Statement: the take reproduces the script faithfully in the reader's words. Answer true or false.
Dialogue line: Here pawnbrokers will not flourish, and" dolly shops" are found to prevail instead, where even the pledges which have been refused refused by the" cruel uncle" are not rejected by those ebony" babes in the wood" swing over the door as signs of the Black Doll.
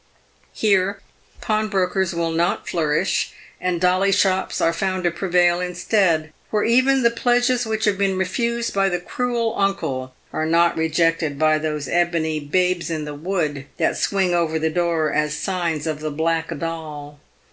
false